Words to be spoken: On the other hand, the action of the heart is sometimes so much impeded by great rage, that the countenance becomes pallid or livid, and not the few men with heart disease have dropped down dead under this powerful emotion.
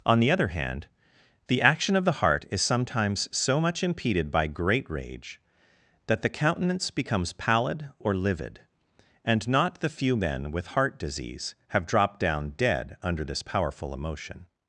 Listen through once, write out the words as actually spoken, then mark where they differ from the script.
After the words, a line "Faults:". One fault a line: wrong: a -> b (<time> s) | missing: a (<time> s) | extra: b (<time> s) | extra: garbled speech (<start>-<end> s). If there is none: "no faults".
On the other hand, the action of the heart is sometimes so much impeded by great rage, that the countenance becomes pallid or livid, and not the few men with heart disease have dropped down dead under this powerful emotion.
Faults:
no faults